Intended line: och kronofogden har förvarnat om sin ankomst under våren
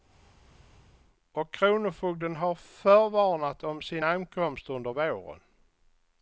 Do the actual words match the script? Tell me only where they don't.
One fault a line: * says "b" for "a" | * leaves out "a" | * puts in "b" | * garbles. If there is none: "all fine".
all fine